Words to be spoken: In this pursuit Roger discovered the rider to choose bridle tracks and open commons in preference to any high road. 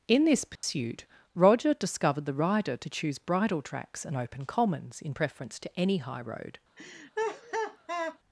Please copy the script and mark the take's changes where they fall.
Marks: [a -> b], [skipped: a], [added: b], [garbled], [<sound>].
In this pursuit [dropout] Roger discovered the rider to choose bridle tracks and open commons in preference to any high road. [laugh]